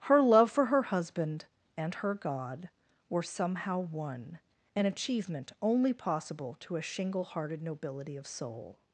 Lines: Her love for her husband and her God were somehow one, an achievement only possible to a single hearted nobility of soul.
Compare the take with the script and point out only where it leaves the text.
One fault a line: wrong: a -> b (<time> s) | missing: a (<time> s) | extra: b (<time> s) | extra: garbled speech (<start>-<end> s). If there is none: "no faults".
wrong: single -> shingle (6.8 s)